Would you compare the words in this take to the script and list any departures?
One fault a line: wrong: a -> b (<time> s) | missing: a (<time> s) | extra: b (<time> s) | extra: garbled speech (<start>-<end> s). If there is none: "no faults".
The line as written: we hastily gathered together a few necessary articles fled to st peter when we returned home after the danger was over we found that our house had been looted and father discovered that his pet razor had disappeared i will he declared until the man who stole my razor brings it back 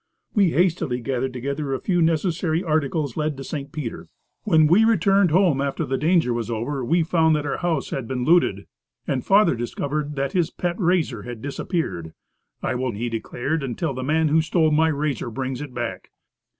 no faults